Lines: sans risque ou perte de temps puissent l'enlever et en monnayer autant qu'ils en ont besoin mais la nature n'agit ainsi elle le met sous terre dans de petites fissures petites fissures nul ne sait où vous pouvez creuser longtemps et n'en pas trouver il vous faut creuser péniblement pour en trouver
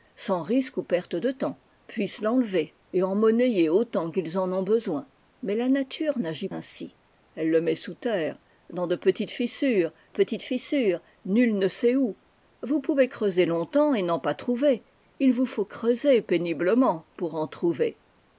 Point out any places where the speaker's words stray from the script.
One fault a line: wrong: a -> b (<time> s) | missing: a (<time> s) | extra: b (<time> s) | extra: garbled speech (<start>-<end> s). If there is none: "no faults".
no faults